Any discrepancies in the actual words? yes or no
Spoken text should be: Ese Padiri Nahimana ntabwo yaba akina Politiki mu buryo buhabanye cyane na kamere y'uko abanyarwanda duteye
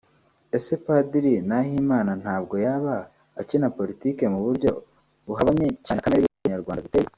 no